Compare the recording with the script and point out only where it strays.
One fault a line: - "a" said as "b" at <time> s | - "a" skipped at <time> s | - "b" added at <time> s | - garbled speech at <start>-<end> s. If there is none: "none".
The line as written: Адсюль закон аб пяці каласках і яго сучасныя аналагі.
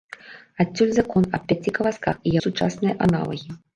- "яго" skipped at 2.3 s